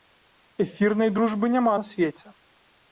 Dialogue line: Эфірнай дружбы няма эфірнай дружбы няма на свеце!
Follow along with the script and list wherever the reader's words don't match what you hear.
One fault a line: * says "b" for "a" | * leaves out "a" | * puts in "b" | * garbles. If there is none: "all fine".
* leaves out "эфірнай дружбы няма"